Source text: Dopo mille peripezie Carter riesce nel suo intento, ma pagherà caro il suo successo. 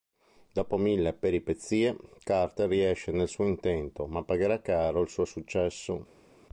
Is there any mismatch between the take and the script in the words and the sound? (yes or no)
no